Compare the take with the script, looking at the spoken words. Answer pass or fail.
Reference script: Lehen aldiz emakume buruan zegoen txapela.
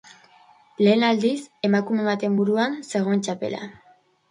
fail